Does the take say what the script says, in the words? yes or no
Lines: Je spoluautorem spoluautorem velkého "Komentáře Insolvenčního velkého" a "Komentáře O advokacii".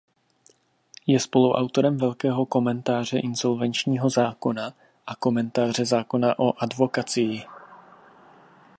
no